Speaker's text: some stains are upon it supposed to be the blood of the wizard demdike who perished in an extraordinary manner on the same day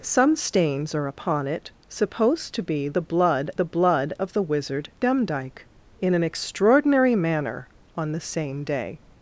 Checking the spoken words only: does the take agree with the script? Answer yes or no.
no